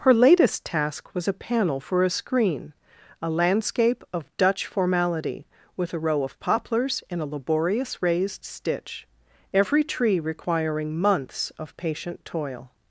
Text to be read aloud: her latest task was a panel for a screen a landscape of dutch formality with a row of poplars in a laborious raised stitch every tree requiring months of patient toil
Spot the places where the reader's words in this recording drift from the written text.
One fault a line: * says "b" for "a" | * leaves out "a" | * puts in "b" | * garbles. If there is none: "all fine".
all fine